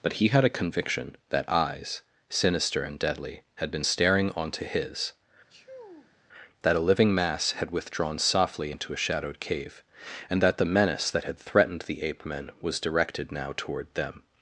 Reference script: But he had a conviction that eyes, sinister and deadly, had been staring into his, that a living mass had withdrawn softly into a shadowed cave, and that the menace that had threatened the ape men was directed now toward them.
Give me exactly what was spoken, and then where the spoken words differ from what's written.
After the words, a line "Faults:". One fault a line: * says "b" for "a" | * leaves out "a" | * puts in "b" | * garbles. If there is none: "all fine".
But he had a conviction that eyes, sinister and deadly, had been staring onto his, that a living mass had withdrawn softly into a shadowed cave, and that the menace that had threatened the ape men was directed now toward them.
Faults:
* says "onto" for "into"